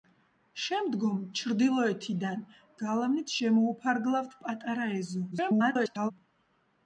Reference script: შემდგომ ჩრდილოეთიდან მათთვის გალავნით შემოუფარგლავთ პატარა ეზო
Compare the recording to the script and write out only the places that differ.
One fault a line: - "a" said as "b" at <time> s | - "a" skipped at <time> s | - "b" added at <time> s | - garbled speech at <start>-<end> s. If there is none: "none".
- "მათთვის" skipped at 2.4 s
- garbled speech at 5.3-6.1 s